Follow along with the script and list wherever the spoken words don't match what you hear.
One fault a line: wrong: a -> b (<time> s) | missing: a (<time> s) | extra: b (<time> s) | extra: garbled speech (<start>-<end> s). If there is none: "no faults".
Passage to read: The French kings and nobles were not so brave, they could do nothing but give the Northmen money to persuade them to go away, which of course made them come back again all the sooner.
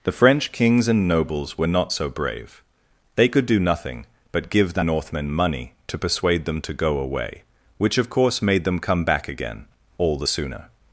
no faults